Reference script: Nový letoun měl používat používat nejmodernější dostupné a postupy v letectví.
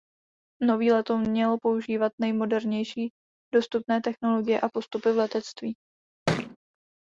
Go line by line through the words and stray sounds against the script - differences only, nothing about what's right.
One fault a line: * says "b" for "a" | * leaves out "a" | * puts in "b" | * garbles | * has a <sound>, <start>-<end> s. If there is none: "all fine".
* leaves out "používat"
* puts in "technologie"
* has a thud, 6.3-6.6 s